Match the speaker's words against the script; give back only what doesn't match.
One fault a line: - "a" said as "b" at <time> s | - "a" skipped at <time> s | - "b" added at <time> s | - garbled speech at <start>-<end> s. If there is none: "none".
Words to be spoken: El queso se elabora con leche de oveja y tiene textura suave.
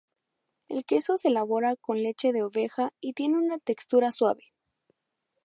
- "una" added at 3.4 s